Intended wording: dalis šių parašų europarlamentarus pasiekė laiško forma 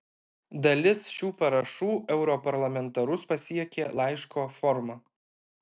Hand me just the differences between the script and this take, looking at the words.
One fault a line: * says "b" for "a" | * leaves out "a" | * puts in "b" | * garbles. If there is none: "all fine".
all fine